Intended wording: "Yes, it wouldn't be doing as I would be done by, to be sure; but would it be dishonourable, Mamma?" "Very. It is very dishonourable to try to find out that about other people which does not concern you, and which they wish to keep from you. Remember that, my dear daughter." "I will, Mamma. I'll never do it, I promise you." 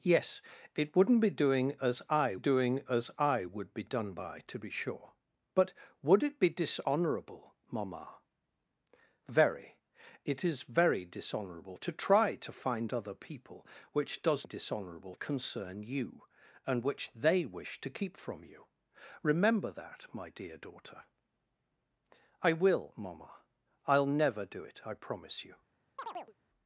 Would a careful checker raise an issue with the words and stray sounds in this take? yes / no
yes